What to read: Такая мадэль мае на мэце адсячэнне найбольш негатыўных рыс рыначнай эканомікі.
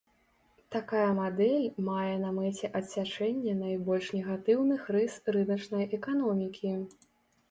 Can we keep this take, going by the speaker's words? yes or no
yes